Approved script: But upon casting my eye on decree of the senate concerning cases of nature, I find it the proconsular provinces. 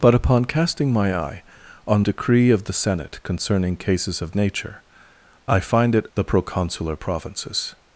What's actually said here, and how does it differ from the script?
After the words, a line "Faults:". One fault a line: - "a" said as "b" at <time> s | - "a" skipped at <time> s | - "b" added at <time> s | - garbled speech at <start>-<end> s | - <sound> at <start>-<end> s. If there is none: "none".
But upon casting my eye on decree of the senate concerning cases of nature, I find it the proconsular provinces.
Faults:
none